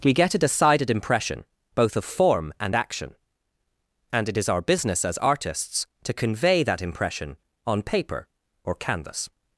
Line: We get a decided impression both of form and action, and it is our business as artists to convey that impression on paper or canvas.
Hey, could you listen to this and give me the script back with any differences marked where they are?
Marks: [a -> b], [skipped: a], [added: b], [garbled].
We get a decided impression both of form and action, and it is our business as artists to convey that impression on paper or canvas.